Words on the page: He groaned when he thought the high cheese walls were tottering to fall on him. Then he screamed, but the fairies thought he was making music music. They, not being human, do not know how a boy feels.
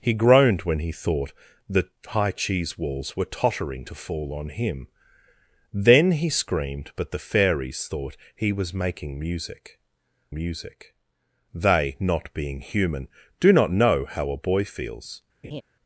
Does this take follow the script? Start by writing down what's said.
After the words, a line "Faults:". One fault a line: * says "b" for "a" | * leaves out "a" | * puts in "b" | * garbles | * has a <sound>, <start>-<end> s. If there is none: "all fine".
He groaned when he thought the high cheese walls were tottering to fall on him. Then he screamed, but the fairies thought he was making music music. They, not being human, do not know how a boy feels.
Faults:
* has a laugh, 15.4-15.6 s